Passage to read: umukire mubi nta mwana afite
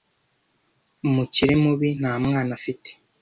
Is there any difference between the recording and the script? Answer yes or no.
no